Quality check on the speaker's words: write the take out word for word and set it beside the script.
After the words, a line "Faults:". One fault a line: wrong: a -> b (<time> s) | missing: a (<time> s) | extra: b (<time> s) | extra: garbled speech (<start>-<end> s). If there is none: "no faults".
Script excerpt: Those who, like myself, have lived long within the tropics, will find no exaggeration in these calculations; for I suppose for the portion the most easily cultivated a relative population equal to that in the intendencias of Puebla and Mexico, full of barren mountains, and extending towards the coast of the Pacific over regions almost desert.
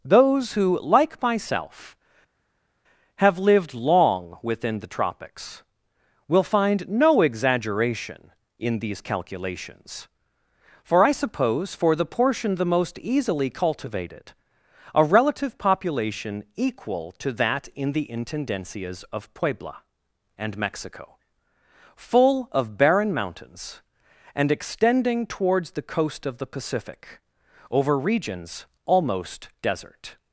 Those who, like myself, have lived long within the tropics, will find no exaggeration in these calculations; for I suppose for the portion the most easily cultivated a relative population equal to that in the intendencias of Puebla and Mexico, full of barren mountains, and extending towards the coast of the Pacific over regions almost desert.
Faults:
no faults